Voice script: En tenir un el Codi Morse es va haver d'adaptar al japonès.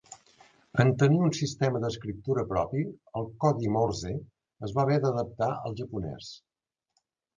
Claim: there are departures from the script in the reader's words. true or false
true